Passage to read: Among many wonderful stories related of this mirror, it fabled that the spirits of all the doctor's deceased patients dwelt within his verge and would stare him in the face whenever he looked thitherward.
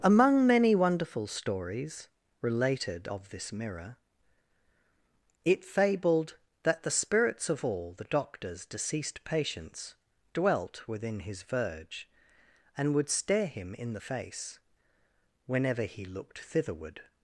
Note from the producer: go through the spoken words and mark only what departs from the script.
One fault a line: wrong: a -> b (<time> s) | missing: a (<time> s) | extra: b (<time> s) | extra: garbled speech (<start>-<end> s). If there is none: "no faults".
no faults